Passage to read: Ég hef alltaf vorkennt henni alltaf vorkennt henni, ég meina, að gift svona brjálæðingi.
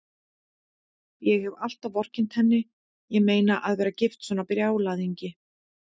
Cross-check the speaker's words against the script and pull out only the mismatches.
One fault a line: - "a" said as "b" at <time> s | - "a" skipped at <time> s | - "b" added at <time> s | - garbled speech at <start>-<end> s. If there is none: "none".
- "alltaf vorkennt henni" skipped at 2.6 s
- "vera" added at 3.8 s